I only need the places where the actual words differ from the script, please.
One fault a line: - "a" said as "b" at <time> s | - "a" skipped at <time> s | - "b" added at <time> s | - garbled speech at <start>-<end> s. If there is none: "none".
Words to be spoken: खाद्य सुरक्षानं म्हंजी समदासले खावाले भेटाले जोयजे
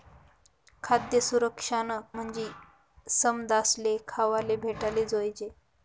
none